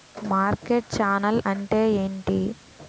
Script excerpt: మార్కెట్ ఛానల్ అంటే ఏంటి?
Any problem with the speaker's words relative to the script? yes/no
no